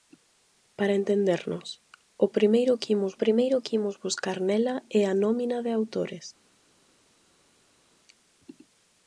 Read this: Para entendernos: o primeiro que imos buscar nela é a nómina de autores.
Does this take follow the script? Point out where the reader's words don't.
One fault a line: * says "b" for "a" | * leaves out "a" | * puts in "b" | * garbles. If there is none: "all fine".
* puts in "primeiro que imos"